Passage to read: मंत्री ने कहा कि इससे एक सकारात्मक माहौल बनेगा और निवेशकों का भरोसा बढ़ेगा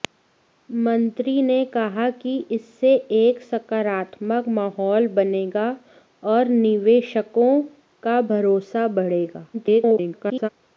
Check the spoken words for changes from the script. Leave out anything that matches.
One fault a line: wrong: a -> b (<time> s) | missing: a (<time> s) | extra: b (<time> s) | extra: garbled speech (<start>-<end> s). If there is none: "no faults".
extra: garbled speech (9.5-10.5 s)